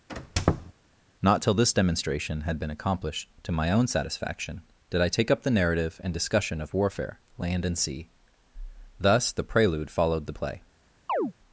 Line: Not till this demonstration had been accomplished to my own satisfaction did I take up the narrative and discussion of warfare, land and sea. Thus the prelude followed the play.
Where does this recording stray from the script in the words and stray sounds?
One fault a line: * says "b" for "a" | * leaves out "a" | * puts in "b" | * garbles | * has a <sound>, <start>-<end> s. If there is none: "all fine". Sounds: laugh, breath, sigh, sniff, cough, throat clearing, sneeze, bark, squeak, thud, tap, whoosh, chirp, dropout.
* has a squeak, 0.1-0.7 s
* has a chirp, 11.1-11.3 s